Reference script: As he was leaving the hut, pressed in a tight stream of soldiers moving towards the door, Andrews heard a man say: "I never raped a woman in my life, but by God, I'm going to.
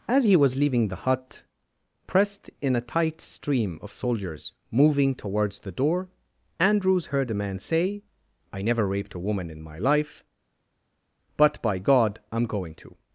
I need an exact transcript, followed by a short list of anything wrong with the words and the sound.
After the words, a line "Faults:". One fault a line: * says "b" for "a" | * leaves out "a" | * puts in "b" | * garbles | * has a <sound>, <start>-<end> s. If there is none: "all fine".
As he was leaving the hut, pressed in a tight stream of soldiers moving towards the door, Andrews heard a man say: "I never raped a woman in my life, but by God, I'm going to.
Faults:
all fine